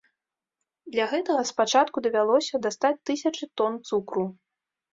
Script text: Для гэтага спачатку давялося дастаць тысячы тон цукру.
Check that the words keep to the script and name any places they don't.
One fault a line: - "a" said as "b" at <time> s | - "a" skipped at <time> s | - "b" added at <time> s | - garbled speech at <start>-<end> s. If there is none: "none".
none